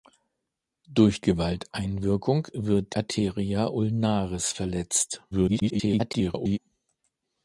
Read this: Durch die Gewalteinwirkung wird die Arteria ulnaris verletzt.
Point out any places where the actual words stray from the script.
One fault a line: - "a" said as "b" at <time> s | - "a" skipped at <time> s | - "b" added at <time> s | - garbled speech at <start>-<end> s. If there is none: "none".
- "die" skipped at 1.2 s
- "die" skipped at 2.9 s
- garbled speech at 5.3-6.6 s